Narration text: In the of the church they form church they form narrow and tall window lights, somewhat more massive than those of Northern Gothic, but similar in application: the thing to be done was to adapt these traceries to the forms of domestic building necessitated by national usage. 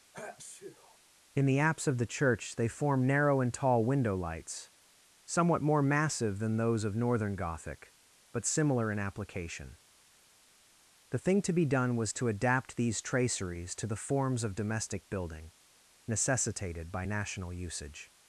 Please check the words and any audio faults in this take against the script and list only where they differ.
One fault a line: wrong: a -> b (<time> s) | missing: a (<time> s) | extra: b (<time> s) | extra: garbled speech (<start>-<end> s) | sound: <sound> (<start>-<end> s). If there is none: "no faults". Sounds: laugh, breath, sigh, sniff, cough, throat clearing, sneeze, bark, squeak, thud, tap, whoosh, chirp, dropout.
sound: sneeze (0.1-1.0 s)
extra: apse (1.6 s)
missing: church they form (3.1 s)